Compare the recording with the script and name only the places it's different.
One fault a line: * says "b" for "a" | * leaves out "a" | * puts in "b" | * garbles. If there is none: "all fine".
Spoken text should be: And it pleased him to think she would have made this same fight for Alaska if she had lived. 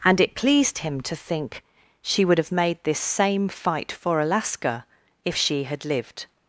all fine